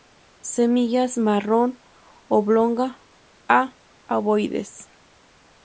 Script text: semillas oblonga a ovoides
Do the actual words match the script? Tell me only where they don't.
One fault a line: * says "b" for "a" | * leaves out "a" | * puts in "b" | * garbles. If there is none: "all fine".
* puts in "marrón"